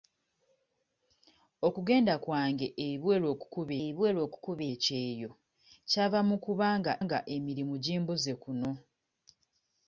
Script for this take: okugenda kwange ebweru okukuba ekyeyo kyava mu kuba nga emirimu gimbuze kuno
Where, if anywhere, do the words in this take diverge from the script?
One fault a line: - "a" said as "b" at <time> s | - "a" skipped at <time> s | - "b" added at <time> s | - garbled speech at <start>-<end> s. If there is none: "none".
- "ebweru okukuba" added at 3.8 s
- "nga" added at 7.0 s